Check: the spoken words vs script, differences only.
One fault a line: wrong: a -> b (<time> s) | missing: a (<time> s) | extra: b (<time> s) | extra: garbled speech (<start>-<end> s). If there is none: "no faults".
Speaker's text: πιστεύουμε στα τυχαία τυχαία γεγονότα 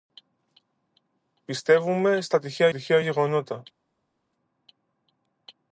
no faults